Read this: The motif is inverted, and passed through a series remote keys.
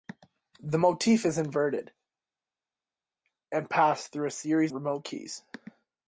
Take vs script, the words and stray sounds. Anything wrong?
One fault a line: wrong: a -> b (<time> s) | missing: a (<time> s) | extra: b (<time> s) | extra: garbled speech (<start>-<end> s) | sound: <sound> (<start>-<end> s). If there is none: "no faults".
no faults